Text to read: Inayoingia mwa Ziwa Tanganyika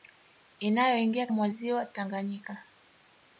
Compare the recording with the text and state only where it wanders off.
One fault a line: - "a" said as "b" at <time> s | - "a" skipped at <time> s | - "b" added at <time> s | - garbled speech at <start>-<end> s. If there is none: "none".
none